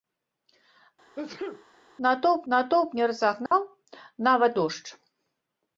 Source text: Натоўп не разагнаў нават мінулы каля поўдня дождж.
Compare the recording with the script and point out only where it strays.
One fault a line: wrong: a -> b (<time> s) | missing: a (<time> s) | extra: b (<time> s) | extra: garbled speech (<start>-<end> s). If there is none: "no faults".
extra: натоўп (2.5 s)
missing: мінулы каля поўдня (4.5 s)